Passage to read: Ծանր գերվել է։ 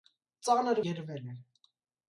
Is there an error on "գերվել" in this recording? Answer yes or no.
no